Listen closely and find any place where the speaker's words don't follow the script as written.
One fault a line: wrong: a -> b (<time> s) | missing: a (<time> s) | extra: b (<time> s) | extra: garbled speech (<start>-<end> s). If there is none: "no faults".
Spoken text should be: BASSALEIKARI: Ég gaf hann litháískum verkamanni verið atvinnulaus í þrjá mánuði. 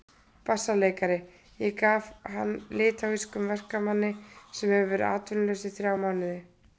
extra: sem hefur (4.6 s)